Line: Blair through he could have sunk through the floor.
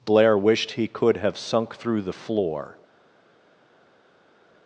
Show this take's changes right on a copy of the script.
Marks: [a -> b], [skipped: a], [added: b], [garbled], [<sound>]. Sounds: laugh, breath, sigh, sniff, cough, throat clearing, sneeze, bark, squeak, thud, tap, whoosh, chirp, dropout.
Blair [through -> wished] he could have sunk through the floor.